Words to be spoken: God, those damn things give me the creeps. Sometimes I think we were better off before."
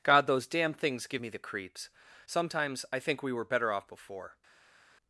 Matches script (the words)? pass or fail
pass